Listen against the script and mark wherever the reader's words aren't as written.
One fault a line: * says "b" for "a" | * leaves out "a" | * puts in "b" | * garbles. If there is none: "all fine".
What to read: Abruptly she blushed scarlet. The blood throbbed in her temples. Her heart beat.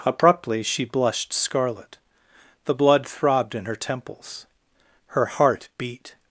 all fine